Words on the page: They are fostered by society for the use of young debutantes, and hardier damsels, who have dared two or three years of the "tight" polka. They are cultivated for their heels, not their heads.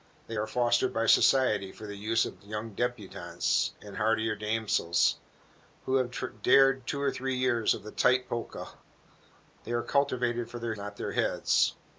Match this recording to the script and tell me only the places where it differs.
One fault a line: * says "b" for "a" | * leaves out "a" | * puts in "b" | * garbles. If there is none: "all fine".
* leaves out "heels"